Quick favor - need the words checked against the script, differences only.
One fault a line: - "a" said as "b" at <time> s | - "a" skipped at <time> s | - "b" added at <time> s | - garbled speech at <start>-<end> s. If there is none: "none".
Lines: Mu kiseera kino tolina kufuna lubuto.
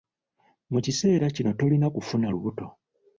none